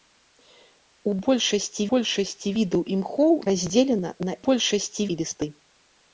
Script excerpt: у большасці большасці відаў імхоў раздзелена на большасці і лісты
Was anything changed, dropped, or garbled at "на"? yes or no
no